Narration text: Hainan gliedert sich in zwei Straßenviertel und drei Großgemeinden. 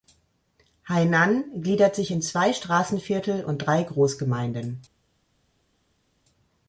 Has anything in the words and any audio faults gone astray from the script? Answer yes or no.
no